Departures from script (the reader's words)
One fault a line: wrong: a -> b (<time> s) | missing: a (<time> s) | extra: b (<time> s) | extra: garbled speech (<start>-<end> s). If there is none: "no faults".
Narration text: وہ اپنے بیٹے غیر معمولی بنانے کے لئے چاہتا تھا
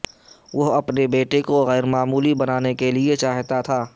extra: کو (1.4 s)